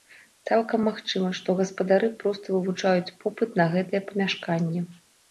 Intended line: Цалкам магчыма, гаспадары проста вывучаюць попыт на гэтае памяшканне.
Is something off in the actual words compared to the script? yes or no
yes